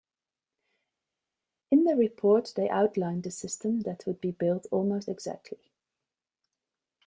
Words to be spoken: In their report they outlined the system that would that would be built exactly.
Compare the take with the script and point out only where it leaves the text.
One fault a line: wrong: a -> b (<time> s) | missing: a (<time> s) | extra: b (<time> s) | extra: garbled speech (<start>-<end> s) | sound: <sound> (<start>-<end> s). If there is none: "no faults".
missing: that would (4.2 s)
extra: almost (4.7 s)